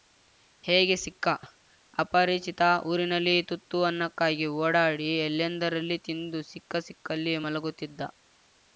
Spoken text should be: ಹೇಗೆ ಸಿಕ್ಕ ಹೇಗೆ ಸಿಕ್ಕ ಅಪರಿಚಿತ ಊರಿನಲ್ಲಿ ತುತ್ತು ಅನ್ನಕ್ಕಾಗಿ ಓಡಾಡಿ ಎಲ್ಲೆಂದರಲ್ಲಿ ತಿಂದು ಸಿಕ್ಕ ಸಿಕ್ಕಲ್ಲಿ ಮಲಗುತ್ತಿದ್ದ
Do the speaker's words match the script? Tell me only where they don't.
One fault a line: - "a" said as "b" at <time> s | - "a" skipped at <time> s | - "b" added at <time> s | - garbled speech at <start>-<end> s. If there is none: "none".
- "ಹೇಗೆ ಸಿಕ್ಕ" skipped at 1.3 s